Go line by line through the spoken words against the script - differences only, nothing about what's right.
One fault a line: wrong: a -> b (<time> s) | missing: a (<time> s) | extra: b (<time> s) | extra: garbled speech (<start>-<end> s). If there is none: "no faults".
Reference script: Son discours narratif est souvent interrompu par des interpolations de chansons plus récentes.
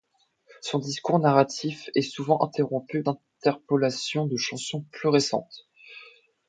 missing: par des (3.0 s)